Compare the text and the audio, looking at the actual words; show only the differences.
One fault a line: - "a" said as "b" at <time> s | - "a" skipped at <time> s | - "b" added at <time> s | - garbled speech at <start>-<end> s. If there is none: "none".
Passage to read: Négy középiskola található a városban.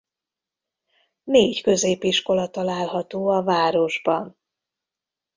none